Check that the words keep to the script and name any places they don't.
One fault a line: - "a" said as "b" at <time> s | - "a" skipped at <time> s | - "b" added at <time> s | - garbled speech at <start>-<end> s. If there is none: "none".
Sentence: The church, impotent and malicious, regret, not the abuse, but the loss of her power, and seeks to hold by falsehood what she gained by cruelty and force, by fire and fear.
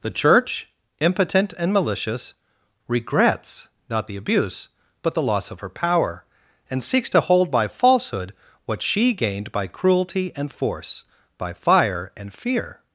- "regret" said as "regrets" at 2.9 s